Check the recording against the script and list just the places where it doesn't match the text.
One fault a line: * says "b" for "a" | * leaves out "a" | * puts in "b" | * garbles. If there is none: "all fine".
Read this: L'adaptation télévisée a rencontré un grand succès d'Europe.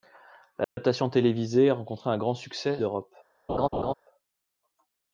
all fine